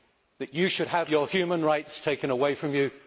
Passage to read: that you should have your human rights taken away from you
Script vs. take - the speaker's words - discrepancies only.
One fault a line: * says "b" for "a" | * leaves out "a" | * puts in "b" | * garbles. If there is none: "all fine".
all fine